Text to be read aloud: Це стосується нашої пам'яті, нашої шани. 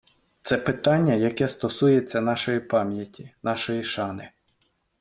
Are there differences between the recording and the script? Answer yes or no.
yes